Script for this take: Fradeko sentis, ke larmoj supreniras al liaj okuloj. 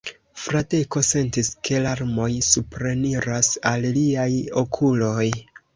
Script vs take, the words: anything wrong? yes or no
no